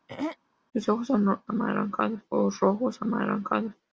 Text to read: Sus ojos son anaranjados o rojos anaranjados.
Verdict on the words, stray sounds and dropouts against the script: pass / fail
fail